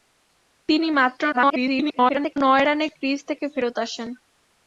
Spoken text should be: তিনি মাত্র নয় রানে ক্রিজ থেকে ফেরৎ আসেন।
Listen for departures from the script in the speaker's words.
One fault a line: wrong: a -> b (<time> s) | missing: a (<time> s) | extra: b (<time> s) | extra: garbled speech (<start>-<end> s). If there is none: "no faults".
extra: garbled speech (1.3-2.4 s)